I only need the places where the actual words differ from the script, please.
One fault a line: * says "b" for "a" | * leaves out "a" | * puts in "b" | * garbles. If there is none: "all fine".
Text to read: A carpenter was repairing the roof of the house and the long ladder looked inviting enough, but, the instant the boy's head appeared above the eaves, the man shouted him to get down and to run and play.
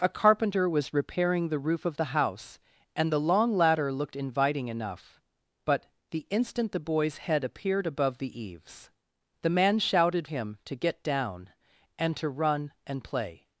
all fine